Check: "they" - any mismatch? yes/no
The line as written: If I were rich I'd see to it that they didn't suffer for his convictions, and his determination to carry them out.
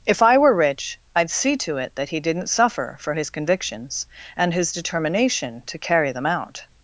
yes